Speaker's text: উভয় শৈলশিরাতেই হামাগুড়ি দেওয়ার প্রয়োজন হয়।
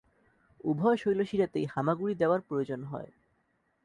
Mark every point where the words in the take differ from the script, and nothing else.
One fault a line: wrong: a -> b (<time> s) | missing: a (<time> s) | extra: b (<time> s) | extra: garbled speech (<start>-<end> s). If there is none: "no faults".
no faults